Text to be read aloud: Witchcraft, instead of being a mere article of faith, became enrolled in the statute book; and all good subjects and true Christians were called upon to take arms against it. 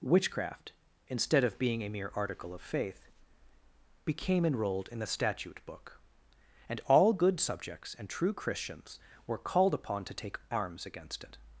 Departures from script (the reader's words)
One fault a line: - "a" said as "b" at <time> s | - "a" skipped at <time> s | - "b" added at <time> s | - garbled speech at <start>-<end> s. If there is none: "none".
none